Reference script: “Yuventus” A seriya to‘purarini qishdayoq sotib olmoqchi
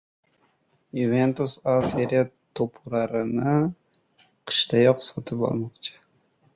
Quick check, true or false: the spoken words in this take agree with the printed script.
true